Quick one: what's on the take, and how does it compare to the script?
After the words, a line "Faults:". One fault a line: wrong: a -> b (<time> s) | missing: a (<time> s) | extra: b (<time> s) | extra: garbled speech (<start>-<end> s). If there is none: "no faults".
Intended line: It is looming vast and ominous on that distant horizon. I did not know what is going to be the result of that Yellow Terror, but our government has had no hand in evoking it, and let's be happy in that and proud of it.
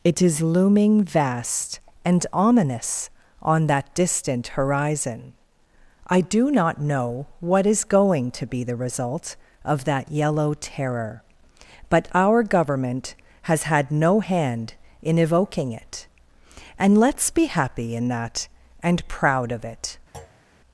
It is looming vast and ominous on that distant horizon. I do not know what is going to be the result of that Yellow Terror, but our government has had no hand in evoking it, and let's be happy in that and proud of it.
Faults:
wrong: did -> do (6.2 s)